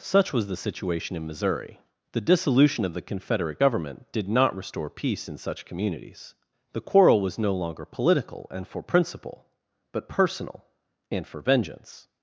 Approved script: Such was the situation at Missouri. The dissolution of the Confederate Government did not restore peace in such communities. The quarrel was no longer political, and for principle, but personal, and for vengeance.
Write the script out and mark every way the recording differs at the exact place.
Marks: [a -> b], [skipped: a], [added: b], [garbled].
Such was the situation [at -> in] Missouri. The dissolution of the Confederate Government did not restore peace in such communities. The quarrel was no longer political, and for principle, but personal, and for vengeance.